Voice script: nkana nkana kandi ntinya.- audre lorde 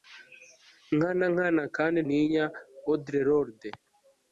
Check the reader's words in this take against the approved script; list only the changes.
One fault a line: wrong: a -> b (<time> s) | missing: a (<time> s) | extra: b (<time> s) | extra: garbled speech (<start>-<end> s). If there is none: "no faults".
no faults